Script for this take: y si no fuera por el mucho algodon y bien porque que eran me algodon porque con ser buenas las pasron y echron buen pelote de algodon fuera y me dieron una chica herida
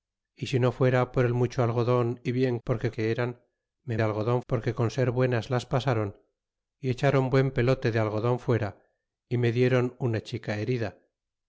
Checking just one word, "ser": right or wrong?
right